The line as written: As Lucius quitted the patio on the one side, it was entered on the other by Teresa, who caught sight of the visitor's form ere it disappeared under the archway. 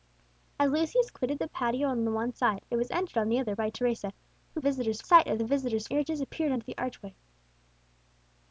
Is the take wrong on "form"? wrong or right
wrong